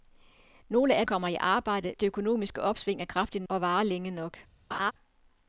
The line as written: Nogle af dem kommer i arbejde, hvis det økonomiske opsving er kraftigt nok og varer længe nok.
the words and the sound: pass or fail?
fail